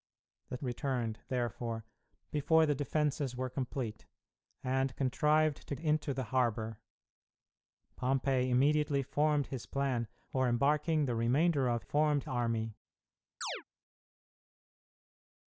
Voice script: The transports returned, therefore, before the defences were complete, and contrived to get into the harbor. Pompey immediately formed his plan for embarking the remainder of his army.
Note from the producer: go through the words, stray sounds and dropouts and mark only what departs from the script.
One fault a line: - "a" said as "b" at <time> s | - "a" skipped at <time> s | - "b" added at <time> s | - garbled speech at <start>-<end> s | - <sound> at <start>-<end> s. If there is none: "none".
- "transports" skipped at 0.6 s
- "get" skipped at 5.7 s
- "his" said as "formed" at 11.8 s
- chirp at 13.4-13.6 s